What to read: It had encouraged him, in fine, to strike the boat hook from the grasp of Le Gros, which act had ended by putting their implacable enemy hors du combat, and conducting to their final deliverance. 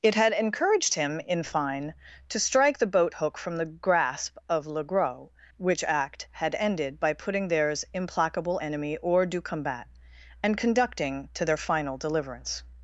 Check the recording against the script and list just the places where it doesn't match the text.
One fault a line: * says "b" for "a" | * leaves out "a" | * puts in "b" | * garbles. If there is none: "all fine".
* says "theirs" for "their"